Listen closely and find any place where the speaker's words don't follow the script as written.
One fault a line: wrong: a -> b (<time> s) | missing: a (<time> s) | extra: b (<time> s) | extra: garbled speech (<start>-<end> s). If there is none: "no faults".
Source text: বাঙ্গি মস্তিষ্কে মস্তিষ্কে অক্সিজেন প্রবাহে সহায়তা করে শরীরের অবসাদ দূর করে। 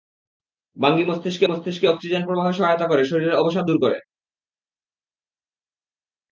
no faults